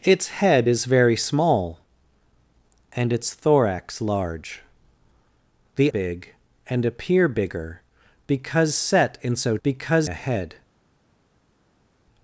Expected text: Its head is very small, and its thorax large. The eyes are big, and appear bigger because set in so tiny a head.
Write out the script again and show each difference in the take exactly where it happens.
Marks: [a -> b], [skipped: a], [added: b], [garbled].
Its head is very small, and its thorax large. The [skipped: eyes are] big, and appear bigger because set in so [tiny -> because] a head.